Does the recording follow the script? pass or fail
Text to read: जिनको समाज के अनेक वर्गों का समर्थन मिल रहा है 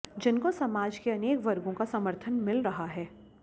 pass